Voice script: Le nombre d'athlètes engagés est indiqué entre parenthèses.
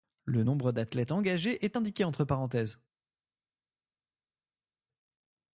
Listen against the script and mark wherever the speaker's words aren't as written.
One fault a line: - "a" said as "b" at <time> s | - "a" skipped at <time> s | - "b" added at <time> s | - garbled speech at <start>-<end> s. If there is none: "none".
none